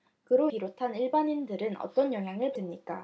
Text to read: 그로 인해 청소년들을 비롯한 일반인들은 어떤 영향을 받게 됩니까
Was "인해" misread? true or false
true